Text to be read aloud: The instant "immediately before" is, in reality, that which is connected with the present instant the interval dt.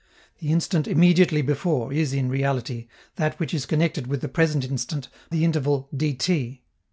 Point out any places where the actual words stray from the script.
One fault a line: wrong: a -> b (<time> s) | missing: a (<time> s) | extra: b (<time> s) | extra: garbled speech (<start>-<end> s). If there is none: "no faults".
no faults